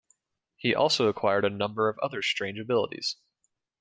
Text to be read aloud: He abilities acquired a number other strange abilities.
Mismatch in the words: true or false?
true